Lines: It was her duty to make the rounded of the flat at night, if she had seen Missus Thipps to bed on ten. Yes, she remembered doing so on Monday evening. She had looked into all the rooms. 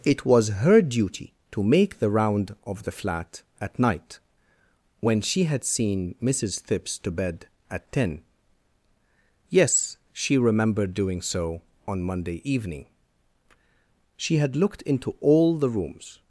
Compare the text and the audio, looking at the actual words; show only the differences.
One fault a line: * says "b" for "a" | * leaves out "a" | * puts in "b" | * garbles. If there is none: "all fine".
* says "round" for "rounded"
* says "when" for "if"
* says "at" for "on"